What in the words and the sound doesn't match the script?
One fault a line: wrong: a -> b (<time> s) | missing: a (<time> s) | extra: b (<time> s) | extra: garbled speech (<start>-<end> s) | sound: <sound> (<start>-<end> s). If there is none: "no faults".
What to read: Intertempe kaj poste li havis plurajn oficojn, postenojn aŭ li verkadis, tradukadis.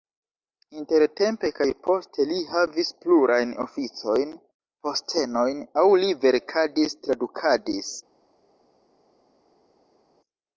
no faults